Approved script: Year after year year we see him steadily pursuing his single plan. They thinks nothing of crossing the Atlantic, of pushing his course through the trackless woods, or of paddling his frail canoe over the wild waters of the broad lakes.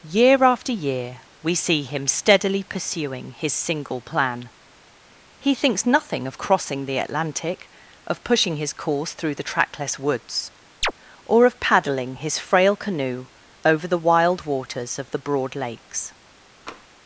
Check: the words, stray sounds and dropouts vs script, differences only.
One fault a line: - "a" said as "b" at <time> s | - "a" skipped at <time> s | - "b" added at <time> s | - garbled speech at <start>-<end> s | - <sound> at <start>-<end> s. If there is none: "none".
- "year" skipped at 1.2 s
- "They" said as "He" at 5.4 s
- chirp at 10.8-10.9 s
- tap at 16.7-16.9 s